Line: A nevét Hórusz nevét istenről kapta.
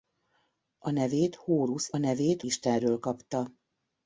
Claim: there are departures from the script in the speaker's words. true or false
false